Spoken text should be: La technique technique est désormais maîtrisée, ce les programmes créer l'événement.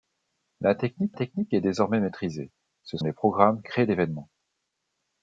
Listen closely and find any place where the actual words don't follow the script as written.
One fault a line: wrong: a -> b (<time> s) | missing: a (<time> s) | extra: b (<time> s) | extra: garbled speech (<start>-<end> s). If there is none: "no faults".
no faults